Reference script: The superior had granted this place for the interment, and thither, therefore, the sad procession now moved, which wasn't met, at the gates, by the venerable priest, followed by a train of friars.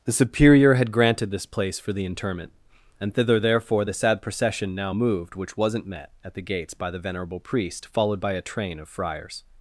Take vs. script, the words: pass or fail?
pass